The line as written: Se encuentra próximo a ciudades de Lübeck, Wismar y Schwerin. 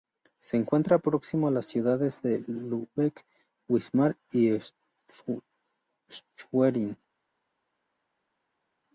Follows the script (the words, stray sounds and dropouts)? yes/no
no